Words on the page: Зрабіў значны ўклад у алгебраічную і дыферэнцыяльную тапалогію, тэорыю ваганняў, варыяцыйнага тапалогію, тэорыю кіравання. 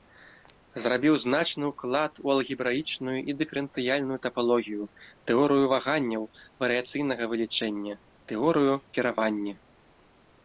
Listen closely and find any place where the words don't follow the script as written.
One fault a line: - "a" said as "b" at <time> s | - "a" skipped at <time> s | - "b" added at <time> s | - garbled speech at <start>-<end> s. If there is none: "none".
- "тапалогію" said as "вылічэння" at 7.3 s